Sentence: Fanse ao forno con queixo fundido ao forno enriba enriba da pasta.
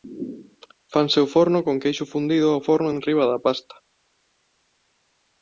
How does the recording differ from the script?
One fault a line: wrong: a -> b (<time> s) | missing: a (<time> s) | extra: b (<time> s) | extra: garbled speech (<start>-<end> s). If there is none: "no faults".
missing: enriba (3.2 s)